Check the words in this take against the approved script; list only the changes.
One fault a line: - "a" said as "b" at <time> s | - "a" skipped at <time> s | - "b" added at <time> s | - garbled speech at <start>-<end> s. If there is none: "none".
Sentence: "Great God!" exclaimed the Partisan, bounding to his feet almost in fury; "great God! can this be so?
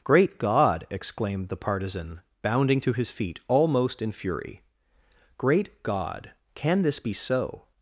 none